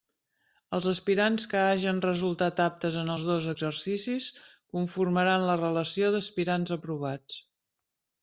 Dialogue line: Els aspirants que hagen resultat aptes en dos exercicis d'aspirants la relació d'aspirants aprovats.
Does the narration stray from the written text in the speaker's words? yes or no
yes